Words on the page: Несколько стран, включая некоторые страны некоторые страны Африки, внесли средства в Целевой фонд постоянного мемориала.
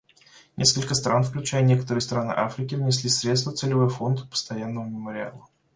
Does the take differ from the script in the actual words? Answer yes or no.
yes